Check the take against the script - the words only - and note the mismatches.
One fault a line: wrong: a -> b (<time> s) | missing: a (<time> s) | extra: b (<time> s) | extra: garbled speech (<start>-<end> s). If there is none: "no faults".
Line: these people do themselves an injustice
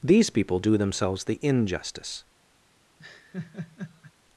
wrong: an -> the (1.2 s)